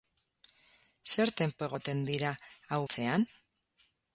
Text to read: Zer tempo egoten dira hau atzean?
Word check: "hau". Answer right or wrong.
right